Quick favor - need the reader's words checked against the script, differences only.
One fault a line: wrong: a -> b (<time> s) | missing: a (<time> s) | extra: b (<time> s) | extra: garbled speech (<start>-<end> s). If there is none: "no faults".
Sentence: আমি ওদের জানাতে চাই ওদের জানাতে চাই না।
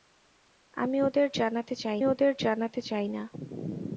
no faults